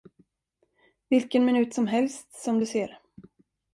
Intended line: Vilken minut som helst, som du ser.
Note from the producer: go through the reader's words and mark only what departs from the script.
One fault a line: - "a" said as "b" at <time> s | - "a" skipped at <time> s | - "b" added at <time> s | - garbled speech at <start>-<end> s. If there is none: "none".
none